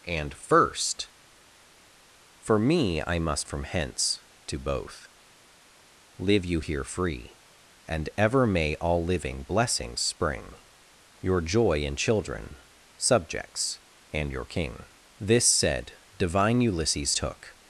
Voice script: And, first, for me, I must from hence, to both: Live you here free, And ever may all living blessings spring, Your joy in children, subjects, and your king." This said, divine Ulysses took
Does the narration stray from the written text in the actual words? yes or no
no